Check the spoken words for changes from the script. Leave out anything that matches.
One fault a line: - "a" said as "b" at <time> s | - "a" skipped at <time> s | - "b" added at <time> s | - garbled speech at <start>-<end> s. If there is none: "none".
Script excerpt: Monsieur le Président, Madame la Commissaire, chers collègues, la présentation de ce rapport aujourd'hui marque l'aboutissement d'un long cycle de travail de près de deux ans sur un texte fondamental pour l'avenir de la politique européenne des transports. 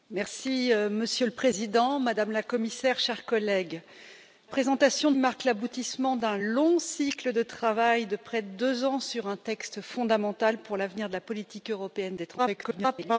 - "la" skipped at 3.8 s
- "ce rapport aujourd'hui" skipped at 5.2 s
- garbled speech at 12.4-13.2 s